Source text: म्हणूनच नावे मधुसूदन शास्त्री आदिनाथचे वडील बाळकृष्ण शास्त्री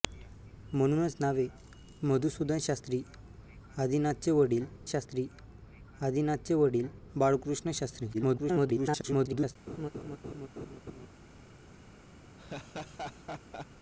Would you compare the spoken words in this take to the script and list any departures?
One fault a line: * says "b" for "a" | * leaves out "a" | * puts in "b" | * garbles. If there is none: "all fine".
* puts in "शास्त्री आदिनाथचे वडील"
* garbles